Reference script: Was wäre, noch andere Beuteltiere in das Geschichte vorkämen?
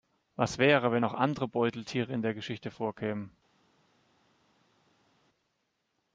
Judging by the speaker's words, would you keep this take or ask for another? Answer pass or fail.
fail